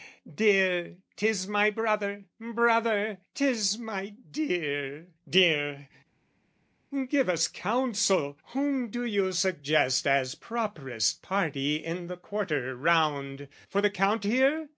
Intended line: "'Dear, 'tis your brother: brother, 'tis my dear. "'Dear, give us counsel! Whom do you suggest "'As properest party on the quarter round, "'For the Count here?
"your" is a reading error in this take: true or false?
true